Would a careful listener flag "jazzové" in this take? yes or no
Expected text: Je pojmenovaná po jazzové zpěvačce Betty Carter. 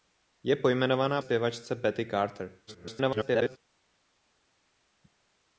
yes